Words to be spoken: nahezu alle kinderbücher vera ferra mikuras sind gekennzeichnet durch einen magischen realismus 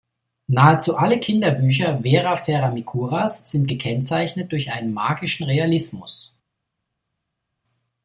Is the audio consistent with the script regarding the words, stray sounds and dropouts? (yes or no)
yes